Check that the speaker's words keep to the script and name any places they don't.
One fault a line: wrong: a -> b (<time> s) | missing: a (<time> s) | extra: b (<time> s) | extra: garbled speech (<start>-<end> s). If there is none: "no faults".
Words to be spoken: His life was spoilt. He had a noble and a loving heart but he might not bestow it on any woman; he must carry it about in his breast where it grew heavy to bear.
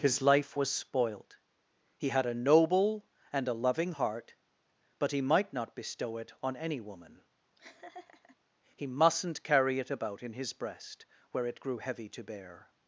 wrong: must -> mustn't (8.9 s)